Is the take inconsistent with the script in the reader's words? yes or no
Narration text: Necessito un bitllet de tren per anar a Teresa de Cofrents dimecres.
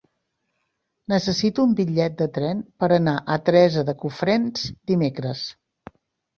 no